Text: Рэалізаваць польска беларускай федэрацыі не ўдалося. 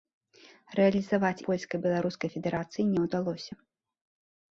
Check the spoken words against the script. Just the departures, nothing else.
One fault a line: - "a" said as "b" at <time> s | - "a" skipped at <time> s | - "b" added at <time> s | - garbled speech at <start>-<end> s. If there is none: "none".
none